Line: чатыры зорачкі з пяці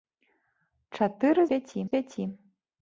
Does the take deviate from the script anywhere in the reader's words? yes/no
yes